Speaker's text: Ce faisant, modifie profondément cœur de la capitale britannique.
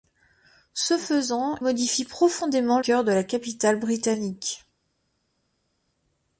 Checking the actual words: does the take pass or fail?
pass